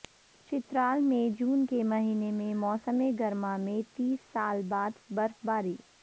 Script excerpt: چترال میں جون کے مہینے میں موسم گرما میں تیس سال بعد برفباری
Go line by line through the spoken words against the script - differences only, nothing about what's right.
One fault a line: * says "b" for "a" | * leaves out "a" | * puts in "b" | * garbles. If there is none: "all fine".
all fine